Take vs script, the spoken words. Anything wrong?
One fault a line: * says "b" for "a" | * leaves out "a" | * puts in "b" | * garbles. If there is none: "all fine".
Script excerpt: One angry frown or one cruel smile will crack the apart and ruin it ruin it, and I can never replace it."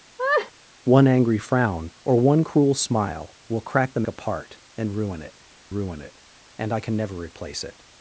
all fine